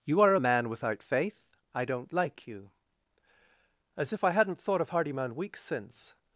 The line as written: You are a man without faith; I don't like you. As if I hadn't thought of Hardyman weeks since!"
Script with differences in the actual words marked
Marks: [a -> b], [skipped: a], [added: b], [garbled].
You are a man without faith; I don't like you. As if I hadn't thought of Hardyman weeks since!"